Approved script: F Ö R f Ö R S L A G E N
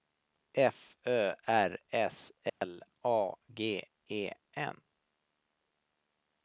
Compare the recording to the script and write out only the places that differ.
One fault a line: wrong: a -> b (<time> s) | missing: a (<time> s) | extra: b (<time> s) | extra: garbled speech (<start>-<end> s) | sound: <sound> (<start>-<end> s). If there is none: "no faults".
missing: f Ö R (1.8 s)
sound: dropout (2.5-2.6 s)